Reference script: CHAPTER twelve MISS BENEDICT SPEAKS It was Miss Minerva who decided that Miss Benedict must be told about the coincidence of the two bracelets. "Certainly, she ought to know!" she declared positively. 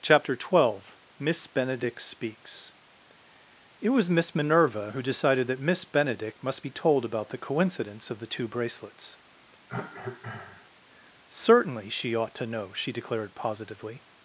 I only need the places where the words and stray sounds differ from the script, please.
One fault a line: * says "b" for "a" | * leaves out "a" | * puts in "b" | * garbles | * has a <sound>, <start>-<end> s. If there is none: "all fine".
* has a cough, 9.7-10.7 s